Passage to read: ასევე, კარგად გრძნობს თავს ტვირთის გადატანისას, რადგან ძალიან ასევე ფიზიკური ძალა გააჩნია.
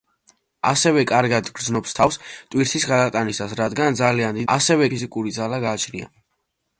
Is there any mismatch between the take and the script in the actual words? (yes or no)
no